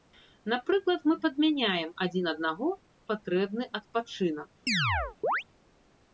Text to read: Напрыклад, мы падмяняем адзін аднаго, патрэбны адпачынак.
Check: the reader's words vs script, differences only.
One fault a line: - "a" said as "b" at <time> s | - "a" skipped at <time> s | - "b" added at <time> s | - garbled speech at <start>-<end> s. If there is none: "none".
none